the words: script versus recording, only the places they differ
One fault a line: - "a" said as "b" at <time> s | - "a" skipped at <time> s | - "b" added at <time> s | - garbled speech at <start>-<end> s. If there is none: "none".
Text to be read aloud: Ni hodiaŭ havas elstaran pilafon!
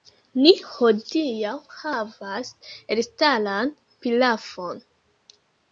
none